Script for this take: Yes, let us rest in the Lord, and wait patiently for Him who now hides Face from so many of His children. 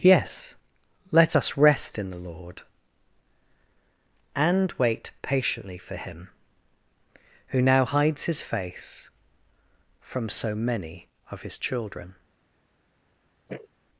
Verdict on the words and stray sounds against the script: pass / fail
fail